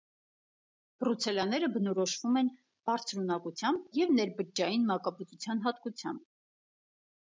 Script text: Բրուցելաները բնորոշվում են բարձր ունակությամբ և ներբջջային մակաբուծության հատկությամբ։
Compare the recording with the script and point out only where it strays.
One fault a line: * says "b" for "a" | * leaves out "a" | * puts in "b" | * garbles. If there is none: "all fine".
all fine